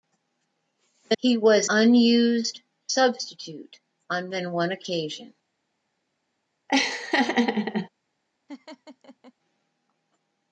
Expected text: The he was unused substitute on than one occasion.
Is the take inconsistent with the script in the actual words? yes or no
no